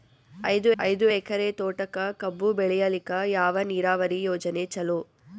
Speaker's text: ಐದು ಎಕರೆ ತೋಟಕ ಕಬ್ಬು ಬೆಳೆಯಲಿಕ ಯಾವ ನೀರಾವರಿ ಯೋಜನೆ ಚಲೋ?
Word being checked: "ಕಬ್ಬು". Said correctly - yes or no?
yes